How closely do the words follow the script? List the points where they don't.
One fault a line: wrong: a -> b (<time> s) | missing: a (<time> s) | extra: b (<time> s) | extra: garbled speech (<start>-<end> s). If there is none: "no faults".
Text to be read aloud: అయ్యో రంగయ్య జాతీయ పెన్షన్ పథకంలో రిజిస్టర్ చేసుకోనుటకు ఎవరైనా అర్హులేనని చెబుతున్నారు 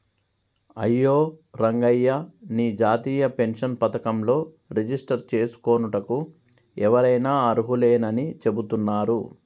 extra: నీ (2.5 s)